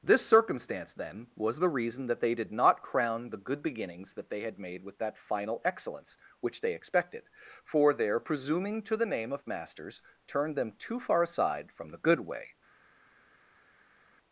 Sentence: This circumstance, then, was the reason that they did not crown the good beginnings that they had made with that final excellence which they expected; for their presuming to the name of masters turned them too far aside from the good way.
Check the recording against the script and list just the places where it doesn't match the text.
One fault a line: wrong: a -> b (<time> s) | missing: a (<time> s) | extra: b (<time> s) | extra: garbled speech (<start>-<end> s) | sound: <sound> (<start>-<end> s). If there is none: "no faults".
no faults